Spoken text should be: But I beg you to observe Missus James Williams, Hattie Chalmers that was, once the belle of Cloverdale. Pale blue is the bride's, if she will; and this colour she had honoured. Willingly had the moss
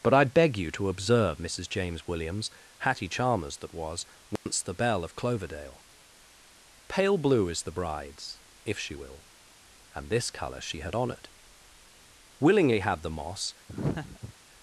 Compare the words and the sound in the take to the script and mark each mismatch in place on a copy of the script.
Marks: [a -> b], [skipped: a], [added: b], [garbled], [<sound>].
But I beg you to observe Missus James Williams, Hattie Chalmers that was, once [dropout] the belle of Cloverdale. Pale blue is the bride's, if she will; and this colour she had honoured. Willingly had the moss [laugh]